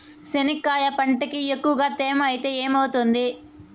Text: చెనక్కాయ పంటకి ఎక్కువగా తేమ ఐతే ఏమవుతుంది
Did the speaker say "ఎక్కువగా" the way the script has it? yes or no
yes